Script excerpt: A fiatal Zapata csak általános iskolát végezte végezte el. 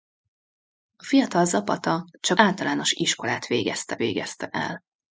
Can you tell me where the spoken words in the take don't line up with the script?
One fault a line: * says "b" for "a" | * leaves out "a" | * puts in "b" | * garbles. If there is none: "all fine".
all fine